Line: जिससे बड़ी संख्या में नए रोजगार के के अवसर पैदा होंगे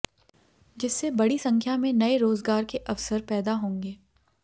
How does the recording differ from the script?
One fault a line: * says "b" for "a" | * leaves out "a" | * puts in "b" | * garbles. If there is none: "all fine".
* leaves out "के"